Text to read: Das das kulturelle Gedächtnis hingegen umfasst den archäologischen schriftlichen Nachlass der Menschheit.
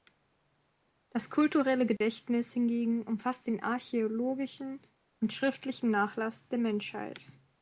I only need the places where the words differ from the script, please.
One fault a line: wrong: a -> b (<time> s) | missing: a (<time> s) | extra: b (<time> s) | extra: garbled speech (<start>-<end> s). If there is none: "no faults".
missing: das (1.3 s)
extra: und (5.2 s)